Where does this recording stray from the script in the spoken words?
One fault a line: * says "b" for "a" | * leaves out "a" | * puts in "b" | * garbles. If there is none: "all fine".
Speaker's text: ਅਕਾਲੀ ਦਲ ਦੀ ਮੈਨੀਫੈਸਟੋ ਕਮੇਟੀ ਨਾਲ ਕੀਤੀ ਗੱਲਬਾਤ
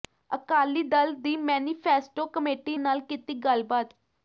all fine